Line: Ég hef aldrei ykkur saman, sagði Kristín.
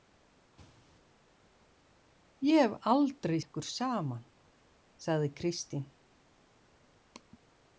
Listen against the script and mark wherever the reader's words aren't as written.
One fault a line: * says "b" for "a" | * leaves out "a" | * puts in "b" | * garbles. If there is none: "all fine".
all fine